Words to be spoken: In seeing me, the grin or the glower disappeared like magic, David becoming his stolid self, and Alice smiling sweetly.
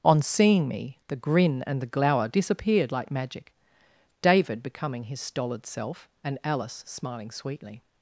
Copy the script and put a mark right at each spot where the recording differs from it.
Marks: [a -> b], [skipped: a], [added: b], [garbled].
[In -> On] seeing me, the grin [or -> and] the glower disappeared like magic, David becoming his stolid self, and Alice smiling sweetly.